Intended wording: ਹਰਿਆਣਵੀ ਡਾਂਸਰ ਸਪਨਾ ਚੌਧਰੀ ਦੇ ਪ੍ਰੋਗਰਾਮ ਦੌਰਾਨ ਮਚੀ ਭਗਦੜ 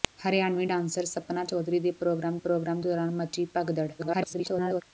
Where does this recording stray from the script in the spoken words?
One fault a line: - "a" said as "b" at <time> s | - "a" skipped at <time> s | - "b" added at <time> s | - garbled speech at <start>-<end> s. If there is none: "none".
- "ਪ੍ਰੋਗਰਾਮ" added at 2.4 s
- garbled speech at 4.0-4.8 s